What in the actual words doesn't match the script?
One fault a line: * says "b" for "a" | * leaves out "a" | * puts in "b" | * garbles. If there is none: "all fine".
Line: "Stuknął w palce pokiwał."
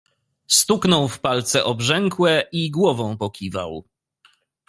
* puts in "obrzękłe i głową"